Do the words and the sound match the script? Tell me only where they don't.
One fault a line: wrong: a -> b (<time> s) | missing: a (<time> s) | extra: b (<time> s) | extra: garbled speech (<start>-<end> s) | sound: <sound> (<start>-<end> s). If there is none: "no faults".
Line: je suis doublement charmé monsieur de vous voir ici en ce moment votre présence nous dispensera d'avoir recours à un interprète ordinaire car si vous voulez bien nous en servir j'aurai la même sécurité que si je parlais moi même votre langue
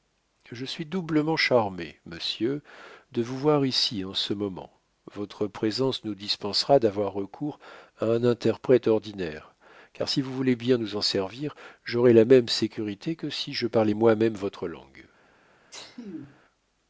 sound: sneeze (15.7-16.4 s)